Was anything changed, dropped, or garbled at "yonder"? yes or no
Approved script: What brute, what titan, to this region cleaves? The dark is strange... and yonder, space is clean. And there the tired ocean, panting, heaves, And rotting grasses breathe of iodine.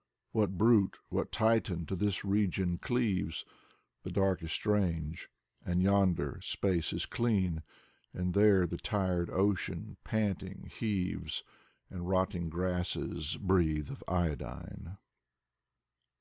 no